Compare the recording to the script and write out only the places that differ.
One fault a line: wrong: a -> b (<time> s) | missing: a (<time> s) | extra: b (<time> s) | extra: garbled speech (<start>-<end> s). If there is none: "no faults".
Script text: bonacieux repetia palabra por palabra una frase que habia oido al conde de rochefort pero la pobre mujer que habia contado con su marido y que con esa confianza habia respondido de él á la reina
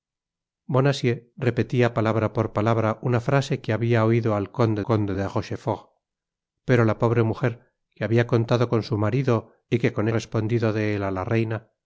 extra: conde (4.8 s)
missing: esa confianza habia (10.1 s)